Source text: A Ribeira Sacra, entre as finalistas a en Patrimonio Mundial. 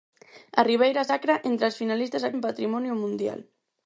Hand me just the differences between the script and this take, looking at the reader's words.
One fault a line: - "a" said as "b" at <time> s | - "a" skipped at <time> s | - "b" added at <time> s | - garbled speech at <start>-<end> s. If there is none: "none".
none